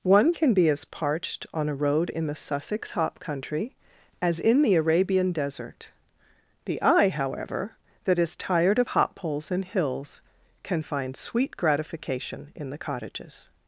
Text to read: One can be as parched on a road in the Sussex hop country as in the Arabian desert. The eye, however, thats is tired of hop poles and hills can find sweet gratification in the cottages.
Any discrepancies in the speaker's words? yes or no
yes